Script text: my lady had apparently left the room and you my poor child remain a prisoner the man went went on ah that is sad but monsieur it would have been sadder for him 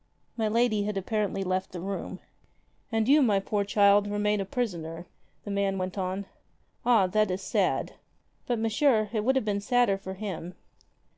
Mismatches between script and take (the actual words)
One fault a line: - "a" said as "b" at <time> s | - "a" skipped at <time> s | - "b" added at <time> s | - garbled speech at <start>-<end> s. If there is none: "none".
- "went" skipped at 6.0 s